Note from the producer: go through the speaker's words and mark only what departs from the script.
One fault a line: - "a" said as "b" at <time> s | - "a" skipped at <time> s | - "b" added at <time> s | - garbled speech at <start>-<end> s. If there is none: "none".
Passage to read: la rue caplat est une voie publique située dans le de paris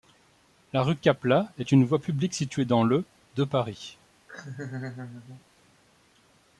none